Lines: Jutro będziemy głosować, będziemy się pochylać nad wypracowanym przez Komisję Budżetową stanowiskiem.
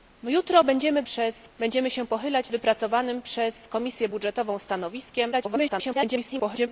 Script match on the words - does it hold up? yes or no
no